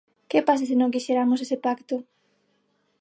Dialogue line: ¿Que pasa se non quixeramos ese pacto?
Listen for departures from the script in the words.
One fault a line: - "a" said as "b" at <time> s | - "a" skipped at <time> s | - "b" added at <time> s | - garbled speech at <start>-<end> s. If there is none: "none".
none